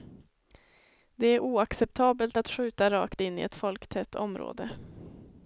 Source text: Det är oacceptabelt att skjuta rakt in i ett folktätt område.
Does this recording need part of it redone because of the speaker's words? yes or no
no